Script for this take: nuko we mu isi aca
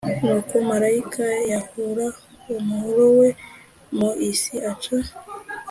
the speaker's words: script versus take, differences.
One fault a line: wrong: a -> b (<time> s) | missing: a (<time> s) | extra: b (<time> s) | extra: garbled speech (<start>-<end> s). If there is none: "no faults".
extra: marayika yahura umuhoro (0.7 s)